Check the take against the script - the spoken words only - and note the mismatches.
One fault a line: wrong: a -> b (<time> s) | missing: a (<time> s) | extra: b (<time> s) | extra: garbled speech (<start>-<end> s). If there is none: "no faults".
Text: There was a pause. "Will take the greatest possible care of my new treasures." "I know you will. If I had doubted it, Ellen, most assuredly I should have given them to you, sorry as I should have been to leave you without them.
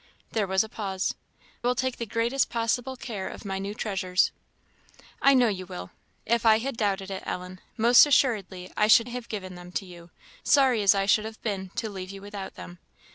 no faults